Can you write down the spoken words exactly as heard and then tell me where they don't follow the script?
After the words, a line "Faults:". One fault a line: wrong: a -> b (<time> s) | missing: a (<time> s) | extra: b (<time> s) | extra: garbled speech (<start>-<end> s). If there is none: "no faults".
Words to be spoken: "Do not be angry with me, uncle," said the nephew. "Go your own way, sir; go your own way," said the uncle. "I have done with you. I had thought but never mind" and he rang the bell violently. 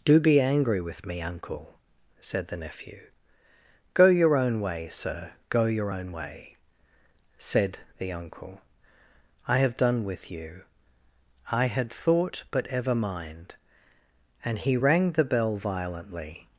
"Do be angry with me, uncle," said the nephew. "Go your own way, sir; go your own way," said the uncle. "I have done with you. I had thought but ever mind" and he rang the bell violently.
Faults:
missing: not (0.2 s)
wrong: never -> ever (12.7 s)